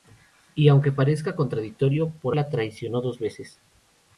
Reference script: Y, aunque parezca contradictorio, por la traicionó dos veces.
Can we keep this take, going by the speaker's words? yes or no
yes